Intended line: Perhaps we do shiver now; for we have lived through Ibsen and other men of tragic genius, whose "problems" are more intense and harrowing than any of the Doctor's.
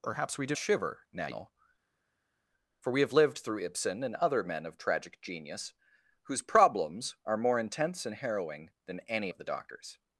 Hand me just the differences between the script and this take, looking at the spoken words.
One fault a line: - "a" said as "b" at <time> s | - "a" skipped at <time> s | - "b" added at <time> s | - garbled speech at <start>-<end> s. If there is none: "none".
none